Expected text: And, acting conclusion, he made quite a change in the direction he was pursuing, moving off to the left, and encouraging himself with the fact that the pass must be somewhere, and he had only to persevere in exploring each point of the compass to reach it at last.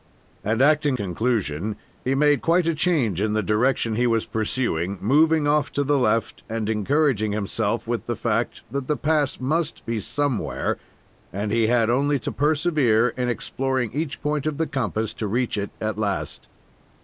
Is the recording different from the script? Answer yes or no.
no